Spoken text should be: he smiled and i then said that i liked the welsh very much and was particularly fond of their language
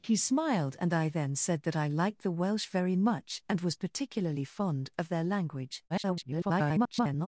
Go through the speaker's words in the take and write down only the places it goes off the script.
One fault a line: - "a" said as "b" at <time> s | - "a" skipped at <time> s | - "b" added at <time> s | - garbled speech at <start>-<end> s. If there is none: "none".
- garbled speech at 5.9-7.3 s